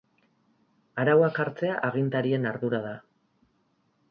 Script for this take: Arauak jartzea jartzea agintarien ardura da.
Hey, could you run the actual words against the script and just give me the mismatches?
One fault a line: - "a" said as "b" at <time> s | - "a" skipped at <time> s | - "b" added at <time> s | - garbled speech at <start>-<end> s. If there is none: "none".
- "jartzea" skipped at 1.8 s